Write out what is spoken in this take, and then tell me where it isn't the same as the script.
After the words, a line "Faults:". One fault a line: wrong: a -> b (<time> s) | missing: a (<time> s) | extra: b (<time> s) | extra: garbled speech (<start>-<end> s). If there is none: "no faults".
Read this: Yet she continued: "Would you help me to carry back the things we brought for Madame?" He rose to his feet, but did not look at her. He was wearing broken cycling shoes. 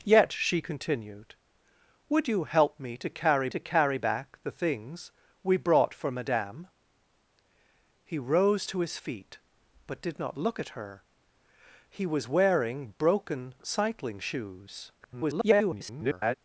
Yet she continued: "Would you help me to carry to carry back the things we brought for Madame?" He rose to his feet, but did not look at her. He was wearing broken cycling shoes. [garbled]
Faults:
extra: to carry (3.5 s)
extra: garbled speech (15.0-16.3 s)